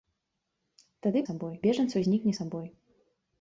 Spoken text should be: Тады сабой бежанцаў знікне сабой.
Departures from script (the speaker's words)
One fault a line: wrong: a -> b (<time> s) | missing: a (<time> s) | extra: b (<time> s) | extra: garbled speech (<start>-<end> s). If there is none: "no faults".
no faults